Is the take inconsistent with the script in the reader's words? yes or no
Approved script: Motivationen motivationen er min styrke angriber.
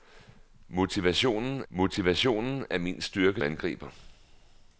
no